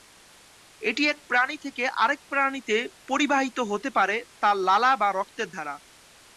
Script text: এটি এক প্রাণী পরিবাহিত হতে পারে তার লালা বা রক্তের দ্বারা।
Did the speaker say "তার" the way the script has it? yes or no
yes